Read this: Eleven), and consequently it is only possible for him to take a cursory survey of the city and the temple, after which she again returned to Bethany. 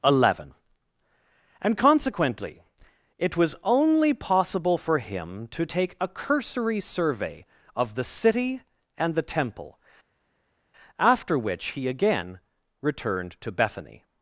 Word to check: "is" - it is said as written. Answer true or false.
false